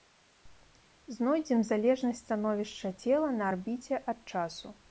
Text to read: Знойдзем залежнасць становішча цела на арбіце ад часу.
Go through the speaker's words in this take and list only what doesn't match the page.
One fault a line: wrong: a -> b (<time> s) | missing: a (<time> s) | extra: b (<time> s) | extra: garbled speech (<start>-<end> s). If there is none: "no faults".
no faults